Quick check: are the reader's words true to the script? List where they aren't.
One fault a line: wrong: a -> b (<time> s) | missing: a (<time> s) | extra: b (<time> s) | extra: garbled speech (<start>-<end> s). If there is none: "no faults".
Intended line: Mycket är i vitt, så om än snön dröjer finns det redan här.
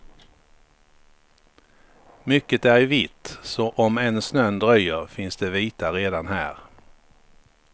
extra: vita (5.5 s)